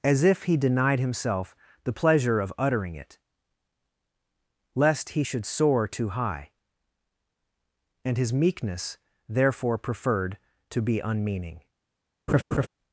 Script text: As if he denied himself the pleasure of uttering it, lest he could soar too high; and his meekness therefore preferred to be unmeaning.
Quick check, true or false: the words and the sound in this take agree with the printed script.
false